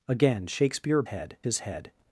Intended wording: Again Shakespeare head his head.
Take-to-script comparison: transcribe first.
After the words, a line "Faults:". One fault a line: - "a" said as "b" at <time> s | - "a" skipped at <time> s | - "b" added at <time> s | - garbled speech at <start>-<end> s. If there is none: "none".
Again Shakespeare head his head.
Faults:
none